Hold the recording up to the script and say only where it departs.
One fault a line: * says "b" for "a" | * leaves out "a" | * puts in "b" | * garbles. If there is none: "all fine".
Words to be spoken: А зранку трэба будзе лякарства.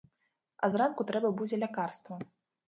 all fine